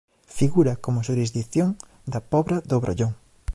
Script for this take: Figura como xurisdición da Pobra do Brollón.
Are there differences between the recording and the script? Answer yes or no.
no